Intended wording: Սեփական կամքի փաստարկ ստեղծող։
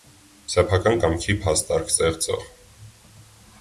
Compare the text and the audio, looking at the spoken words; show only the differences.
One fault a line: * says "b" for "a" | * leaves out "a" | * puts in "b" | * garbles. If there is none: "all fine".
all fine